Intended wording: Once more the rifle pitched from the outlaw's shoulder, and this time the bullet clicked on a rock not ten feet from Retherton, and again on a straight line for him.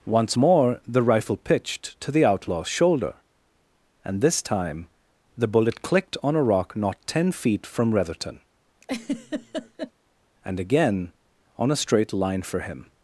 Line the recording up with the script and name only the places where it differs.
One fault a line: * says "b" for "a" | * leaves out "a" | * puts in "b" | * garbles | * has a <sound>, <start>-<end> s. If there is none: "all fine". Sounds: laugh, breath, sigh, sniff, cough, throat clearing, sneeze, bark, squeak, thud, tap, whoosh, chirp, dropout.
* says "to" for "from"
* has a laugh, 8.8-9.9 s